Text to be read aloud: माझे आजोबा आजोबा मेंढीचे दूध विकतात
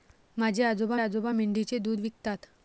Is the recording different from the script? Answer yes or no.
no